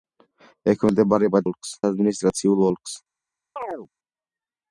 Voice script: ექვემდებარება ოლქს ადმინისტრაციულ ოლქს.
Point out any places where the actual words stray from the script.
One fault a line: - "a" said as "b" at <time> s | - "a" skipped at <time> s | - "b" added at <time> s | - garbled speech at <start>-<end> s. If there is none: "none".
none